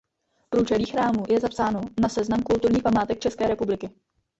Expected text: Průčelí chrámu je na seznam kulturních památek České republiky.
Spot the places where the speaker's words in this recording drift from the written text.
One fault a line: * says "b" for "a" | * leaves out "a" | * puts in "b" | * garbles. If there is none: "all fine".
* puts in "zapsáno"